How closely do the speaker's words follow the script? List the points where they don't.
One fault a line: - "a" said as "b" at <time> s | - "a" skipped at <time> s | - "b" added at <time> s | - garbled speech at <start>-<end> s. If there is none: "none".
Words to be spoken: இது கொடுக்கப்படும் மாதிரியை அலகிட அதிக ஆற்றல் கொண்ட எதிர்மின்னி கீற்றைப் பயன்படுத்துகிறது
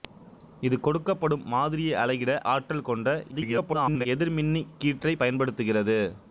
- "அதிக" skipped at 2.3 s
- garbled speech at 3.3-4.1 s